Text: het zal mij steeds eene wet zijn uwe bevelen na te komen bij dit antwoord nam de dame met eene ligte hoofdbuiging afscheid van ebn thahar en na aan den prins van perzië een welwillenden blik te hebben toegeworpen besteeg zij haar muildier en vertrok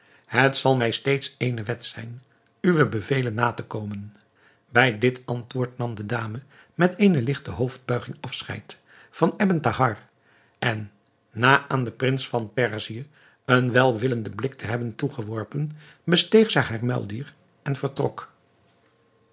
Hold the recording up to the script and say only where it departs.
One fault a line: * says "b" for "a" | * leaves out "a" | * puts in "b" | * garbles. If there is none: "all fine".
all fine